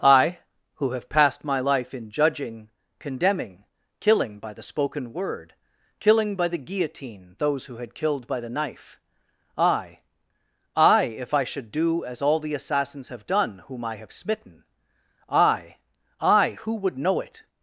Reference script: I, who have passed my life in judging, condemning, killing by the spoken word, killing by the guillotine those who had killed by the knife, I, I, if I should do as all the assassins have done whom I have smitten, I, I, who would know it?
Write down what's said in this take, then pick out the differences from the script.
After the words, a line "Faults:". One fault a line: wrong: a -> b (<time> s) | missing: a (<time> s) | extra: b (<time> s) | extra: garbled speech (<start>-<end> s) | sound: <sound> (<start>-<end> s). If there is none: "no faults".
I, who have passed my life in judging, condemning, killing by the spoken word, killing by the guillotine those who had killed by the knife, I, I, if I should do as all the assassins have done whom I have smitten, I, I, who would know it?
Faults:
no faults